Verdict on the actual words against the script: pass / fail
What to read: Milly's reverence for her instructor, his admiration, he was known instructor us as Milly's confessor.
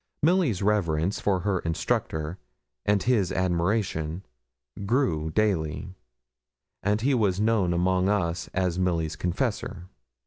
fail